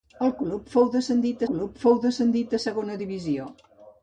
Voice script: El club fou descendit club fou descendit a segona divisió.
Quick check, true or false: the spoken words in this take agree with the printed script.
true